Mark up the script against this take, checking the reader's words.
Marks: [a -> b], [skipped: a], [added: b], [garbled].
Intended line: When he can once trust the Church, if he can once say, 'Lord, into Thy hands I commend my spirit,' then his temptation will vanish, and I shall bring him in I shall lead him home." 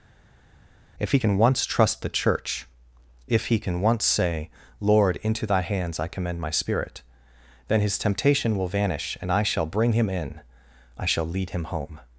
[When -> If] he can once trust the Church, if he can once say, 'Lord, into Thy hands I commend my spirit,' then his temptation will vanish, and I shall bring him in I shall lead him home."